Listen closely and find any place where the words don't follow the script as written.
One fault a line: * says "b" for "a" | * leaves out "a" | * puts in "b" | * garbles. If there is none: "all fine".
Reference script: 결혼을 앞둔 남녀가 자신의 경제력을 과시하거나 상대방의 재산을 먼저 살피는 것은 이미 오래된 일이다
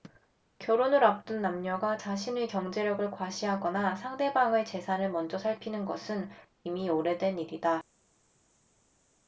all fine